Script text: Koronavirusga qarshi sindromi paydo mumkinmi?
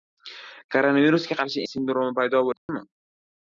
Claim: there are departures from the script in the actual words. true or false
false